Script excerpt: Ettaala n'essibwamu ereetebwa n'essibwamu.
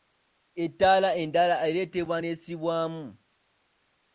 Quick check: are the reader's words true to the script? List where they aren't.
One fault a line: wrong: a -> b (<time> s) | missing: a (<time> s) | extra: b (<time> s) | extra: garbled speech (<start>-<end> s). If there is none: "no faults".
wrong: n'essibwamu -> endala (1.2 s)